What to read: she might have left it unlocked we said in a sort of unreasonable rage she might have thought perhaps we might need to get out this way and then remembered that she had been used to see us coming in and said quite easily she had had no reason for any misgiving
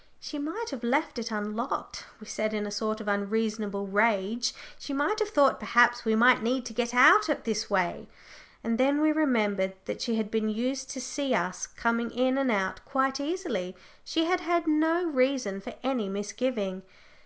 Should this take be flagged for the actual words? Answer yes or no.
yes